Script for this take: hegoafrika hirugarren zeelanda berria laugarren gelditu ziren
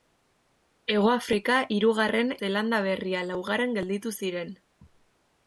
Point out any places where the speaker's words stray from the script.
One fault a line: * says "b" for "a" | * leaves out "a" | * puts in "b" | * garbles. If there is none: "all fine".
all fine